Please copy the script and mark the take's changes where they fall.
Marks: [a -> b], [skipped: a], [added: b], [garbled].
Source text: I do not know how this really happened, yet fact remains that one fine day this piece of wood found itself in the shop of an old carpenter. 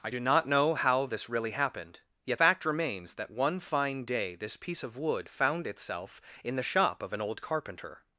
I do not know how this really happened, yet fact remains that one fine day this piece of wood found itself in the shop of an old carpenter.